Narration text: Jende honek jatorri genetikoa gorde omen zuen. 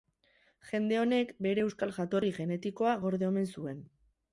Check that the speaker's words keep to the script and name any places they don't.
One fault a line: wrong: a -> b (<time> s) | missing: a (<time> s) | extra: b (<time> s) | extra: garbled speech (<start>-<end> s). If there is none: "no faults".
extra: bere euskal (1.5 s)